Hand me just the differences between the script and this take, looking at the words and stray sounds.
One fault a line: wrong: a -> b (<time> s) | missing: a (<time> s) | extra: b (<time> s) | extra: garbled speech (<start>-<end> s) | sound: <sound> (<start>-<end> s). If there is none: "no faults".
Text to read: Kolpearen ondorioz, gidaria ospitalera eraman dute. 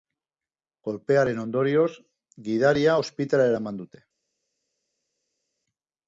no faults